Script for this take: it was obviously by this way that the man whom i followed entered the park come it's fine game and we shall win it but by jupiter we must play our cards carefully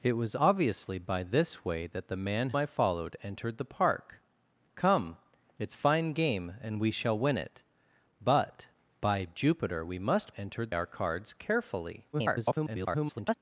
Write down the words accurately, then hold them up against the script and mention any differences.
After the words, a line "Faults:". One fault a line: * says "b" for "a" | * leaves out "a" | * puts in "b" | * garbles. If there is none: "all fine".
it was obviously by this way that the man i followed entered the park come it's fine game and we shall win it but by jupiter we must entered our cards carefully [garbled]
Faults:
* leaves out "whom"
* says "entered" for "play"
* garbles